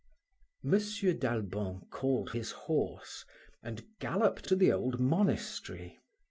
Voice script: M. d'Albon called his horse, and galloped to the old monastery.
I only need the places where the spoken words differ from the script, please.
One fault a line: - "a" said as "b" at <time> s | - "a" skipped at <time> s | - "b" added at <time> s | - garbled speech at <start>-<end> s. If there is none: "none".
none